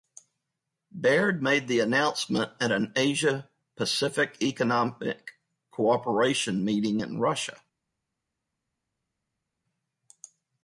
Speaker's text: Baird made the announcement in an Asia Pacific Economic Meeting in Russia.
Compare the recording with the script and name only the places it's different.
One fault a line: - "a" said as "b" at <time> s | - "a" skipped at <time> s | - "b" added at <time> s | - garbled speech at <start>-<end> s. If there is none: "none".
- "in" said as "at" at 2.6 s
- "Cooperation" added at 5.7 s